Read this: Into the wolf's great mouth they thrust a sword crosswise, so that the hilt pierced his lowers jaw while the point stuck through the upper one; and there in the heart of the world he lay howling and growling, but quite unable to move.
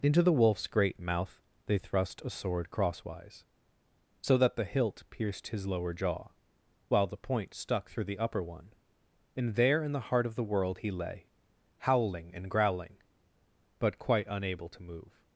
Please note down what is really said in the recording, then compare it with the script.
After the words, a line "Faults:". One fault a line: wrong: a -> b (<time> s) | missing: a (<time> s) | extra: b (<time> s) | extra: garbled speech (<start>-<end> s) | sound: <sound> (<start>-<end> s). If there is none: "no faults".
Into the wolf's great mouth they thrust a sword crosswise, so that the hilt pierced his lower jaw while the point stuck through the upper one; and there in the heart of the world he lay howling and growling, but quite unable to move.
Faults:
wrong: lowers -> lower (5.7 s)